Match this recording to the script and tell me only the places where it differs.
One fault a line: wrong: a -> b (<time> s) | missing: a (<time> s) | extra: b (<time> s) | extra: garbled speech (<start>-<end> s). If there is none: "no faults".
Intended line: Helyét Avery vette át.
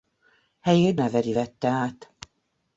no faults